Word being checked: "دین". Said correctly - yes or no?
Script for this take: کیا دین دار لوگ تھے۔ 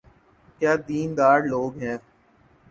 yes